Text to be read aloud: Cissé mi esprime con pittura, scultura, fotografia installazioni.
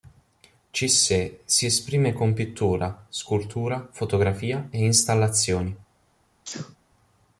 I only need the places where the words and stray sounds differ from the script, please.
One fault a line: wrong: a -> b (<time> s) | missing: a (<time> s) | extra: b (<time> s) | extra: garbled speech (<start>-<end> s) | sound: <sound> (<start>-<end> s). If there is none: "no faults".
wrong: mi -> si (1.4 s)
extra: e (4.7 s)
sound: sneeze (6.4-6.8 s)